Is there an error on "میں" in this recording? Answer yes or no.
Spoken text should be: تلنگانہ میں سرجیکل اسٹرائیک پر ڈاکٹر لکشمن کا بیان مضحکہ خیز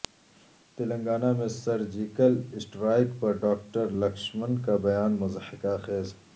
no